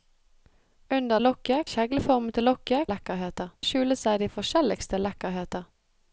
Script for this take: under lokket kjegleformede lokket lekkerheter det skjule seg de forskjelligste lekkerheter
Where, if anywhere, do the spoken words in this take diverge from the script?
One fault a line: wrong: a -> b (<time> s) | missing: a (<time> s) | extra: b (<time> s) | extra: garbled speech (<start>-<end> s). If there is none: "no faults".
no faults